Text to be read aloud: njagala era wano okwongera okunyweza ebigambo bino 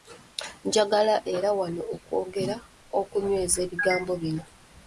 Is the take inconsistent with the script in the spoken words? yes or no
no